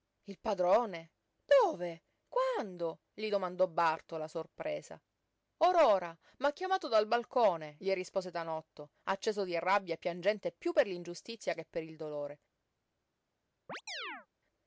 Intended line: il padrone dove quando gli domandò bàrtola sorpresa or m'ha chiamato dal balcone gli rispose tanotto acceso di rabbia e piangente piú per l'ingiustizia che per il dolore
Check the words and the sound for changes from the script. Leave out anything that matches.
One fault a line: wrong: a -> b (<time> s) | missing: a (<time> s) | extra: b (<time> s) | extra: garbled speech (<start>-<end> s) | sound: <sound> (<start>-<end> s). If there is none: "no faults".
extra: ora (5.7 s)
sound: chirp (13.7-14.3 s)